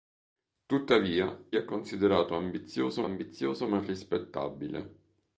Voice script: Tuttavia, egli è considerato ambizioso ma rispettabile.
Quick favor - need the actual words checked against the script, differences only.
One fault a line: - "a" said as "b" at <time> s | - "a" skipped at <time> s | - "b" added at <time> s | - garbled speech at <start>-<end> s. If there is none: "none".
- "egli" skipped at 1.5 s
- "ambizioso" added at 3.0 s